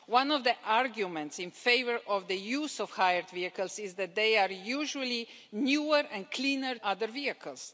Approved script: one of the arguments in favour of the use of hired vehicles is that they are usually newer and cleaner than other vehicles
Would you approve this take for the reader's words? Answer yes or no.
no